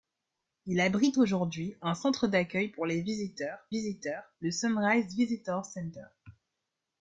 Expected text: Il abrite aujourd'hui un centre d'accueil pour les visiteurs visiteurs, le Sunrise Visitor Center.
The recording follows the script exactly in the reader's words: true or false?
true